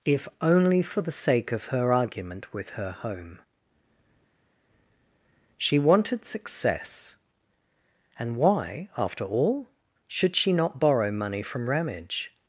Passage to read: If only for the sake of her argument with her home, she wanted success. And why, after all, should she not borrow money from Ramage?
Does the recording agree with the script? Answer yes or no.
yes